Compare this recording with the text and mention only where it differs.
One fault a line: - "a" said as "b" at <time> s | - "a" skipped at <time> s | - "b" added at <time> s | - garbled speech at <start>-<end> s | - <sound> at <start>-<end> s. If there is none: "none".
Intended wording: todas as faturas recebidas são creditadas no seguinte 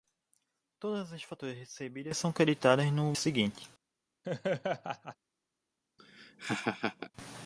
- laugh at 4.2-5.2 s
- laugh at 6.0-7.1 s